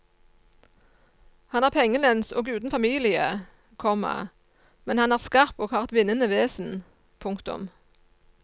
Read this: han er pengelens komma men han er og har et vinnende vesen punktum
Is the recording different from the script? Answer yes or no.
yes